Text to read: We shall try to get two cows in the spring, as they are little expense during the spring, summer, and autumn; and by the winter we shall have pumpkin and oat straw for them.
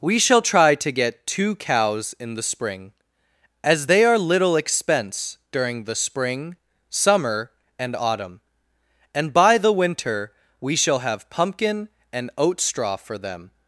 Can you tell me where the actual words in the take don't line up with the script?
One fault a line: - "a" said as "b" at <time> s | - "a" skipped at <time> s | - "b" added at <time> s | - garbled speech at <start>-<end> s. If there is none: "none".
none